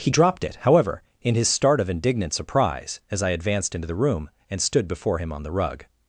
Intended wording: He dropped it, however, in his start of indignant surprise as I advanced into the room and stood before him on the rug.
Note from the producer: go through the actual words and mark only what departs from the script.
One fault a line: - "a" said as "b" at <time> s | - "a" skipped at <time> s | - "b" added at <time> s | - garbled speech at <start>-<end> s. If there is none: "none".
none